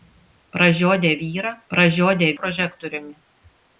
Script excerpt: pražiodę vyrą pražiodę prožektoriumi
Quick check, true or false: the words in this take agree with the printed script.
true